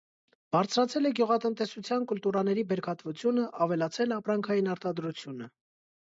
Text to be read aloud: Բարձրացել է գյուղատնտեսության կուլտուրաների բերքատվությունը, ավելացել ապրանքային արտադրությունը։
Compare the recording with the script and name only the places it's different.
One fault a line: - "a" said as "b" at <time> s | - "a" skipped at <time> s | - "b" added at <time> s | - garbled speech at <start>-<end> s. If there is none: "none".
none